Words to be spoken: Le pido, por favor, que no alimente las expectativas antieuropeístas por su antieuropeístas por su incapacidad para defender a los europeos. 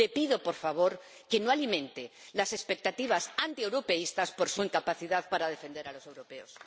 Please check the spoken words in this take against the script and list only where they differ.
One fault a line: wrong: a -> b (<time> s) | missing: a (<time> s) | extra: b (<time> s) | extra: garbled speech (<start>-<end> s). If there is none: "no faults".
missing: antieuropeístas por su (4.6 s)